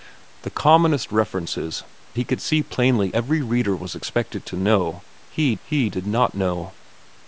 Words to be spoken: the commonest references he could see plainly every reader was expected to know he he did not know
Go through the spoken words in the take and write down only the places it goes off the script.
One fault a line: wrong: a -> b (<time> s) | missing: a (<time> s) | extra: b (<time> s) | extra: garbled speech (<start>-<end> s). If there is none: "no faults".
no faults